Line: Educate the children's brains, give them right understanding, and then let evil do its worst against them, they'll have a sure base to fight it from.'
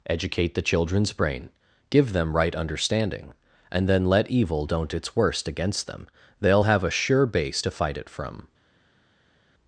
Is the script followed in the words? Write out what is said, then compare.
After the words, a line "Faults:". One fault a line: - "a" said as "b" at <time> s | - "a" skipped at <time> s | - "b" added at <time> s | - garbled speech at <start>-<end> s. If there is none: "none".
Educate the children's brain, give them right understanding, and then let evil don't its worst against them, they'll have a sure base to fight it from.'
Faults:
- "brains" said as "brain" at 1.1 s
- "do" said as "don't" at 4.6 s